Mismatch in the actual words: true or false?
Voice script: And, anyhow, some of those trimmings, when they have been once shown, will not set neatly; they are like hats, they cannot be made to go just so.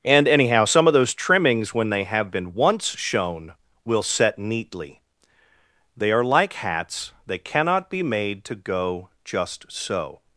true